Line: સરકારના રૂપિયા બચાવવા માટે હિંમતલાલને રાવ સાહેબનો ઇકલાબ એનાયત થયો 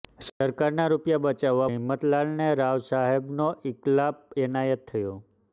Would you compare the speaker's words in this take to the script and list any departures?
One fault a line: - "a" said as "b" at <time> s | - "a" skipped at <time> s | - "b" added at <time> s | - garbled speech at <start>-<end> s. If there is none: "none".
- "માટે" skipped at 1.7 s